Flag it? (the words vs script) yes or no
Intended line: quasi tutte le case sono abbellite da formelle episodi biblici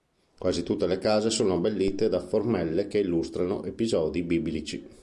yes